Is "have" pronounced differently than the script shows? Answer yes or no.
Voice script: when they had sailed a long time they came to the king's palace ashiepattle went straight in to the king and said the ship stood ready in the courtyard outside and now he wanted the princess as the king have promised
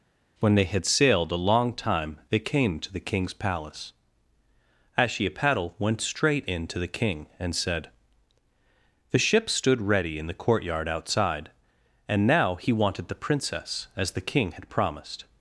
yes